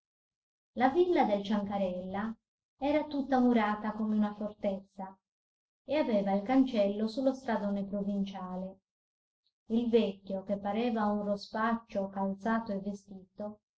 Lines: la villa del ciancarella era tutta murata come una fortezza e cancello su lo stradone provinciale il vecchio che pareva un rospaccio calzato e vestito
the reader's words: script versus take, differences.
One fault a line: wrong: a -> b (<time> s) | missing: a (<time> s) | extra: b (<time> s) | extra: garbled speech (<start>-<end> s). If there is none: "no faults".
extra: aveva il (6.0 s)